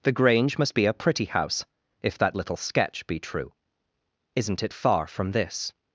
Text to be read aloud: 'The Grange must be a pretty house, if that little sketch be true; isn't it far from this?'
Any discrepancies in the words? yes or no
no